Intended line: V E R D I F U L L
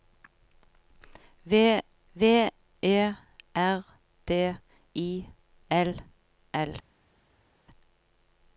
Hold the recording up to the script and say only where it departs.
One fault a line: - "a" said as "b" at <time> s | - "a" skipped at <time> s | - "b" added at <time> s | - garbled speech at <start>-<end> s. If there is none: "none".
- "v" added at 2.1 s
- "F U" skipped at 5.3 s